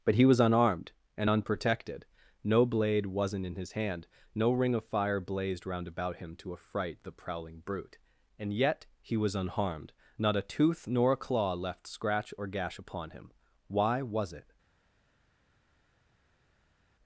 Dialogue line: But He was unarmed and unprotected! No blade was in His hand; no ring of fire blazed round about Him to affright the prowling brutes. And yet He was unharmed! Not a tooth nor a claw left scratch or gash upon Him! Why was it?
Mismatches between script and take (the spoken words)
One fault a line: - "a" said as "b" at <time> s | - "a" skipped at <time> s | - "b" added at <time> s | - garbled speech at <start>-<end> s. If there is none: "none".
- "was" said as "wasn't" at 3.1 s
- "brutes" said as "brute" at 7.6 s